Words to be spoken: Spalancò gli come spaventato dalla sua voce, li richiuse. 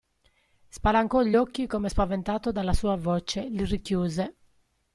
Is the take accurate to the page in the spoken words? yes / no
no